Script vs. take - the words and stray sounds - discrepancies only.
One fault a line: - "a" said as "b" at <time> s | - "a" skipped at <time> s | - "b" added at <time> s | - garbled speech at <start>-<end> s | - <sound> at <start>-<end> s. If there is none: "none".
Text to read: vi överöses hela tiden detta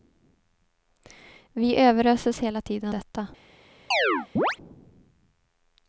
- chirp at 3.9-4.6 s